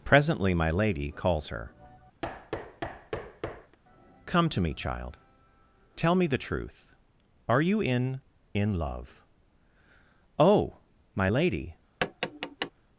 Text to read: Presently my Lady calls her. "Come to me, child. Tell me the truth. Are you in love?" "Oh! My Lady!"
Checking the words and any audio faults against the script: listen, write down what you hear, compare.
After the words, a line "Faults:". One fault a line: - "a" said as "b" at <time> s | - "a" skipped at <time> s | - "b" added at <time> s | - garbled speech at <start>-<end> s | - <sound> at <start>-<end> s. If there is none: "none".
Presently my Lady calls her. "Come to me, child. Tell me the truth. Are you in in love?" "Oh! My Lady!"
Faults:
- thud at 2.2-3.8 s
- "in" added at 8.5 s
- tap at 12.0-12.7 s